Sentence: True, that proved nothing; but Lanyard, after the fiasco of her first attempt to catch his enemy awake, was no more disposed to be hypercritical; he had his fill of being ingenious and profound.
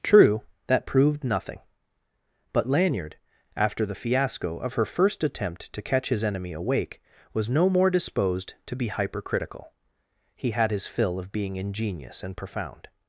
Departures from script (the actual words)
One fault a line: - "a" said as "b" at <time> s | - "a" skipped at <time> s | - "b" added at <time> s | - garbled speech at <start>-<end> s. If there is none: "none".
none